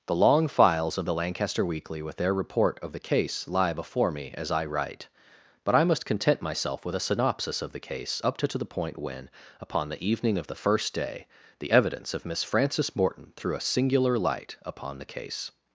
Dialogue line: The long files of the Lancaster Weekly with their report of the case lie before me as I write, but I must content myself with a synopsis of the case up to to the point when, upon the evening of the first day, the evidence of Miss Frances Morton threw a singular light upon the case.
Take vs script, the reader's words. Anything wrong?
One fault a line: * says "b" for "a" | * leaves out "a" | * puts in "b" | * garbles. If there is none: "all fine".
all fine